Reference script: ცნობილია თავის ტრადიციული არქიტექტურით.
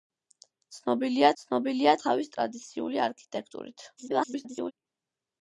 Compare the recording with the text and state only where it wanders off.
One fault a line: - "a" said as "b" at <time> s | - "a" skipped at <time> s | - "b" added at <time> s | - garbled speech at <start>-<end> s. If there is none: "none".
- "ცნობილია" added at 1.4 s
- garbled speech at 4.0-4.7 s